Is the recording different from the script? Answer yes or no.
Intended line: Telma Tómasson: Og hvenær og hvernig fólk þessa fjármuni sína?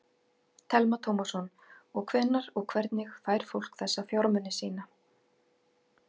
yes